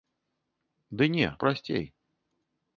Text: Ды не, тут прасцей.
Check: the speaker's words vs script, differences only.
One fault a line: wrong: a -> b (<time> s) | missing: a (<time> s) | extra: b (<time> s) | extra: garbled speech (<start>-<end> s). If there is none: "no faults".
missing: тут (1.3 s)